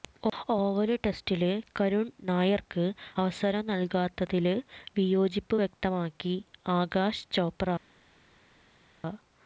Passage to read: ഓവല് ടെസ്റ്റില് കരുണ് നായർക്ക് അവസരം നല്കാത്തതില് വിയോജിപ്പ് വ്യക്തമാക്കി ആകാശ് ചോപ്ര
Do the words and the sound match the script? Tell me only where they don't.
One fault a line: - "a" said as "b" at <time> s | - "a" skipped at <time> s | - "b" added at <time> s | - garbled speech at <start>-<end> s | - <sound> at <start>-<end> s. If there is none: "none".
none